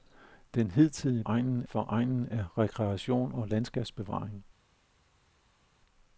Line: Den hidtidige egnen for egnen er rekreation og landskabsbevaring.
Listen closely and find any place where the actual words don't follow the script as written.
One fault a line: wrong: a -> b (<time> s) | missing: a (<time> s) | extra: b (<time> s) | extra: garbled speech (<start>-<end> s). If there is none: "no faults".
no faults